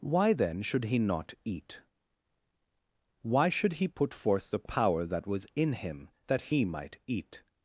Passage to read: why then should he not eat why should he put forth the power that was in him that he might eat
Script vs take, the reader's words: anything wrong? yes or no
no